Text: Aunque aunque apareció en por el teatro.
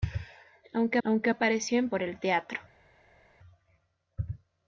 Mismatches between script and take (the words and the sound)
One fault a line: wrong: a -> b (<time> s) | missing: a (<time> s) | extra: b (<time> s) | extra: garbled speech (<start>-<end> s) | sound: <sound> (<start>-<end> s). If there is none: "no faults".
no faults